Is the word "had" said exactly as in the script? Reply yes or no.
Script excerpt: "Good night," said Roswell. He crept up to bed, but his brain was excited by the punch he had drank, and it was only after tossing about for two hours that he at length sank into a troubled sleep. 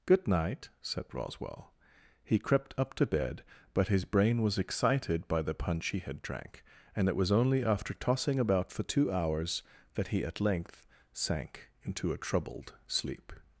yes